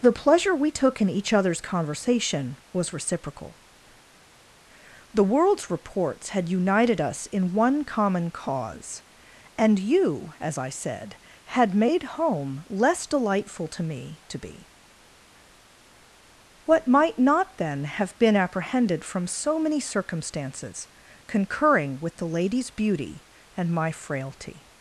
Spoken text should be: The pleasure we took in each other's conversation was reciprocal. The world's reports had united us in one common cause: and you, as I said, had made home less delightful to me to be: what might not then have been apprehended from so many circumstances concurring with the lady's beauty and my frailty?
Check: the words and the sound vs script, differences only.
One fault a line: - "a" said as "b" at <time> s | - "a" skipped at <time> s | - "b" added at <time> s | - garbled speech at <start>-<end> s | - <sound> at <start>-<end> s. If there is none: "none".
none